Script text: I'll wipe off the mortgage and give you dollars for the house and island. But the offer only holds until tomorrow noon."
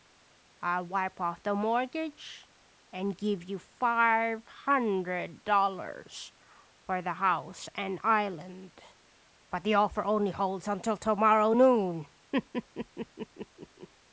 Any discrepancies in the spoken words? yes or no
yes